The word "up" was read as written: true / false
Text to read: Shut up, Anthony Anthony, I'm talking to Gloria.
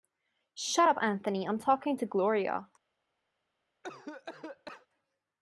true